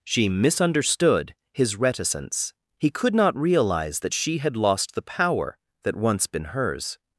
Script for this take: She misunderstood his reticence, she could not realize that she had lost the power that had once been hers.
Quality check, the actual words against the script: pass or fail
fail